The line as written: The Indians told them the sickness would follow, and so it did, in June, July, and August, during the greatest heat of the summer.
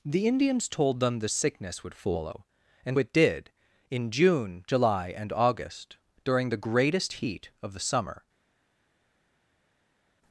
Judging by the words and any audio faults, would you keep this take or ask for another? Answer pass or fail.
fail